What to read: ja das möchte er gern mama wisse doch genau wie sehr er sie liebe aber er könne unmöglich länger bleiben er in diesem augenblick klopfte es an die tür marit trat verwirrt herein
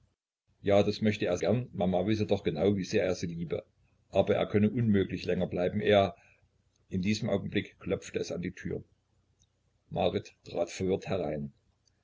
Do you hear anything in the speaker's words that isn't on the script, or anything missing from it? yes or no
no